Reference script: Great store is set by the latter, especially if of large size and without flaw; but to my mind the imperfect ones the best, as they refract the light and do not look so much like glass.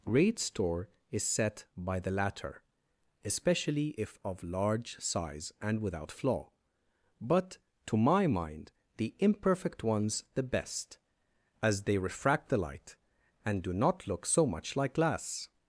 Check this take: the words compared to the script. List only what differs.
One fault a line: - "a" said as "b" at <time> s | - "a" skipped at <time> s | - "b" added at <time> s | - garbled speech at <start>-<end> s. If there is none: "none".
none